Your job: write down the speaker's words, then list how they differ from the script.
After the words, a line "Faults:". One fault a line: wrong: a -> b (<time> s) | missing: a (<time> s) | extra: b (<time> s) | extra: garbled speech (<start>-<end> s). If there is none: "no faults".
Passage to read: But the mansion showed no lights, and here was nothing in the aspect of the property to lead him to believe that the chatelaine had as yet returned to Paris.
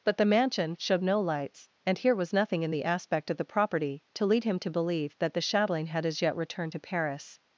But the mansion showed no lights, and here was nothing in the aspect of the property to lead him to believe that the chatelaine had as yet returned to Paris.
Faults:
no faults